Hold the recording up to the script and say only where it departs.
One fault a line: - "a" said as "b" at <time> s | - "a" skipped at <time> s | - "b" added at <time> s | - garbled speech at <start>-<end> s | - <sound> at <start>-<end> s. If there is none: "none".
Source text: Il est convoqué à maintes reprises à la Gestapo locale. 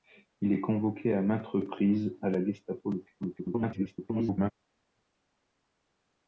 - garbled speech at 3.2-4.5 s